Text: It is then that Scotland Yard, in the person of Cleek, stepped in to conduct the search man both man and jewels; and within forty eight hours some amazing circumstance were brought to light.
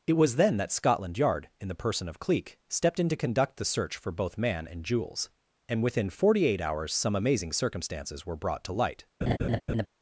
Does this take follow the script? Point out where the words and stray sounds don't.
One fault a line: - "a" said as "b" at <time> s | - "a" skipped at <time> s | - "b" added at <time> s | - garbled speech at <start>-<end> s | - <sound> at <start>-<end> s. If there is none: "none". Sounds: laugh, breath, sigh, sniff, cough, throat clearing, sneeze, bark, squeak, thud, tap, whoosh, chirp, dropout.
- "is" said as "was" at 0.1 s
- "man" said as "for" at 4.0 s
- "circumstance" said as "circumstances" at 7.5 s
- laugh at 9.2-9.9 s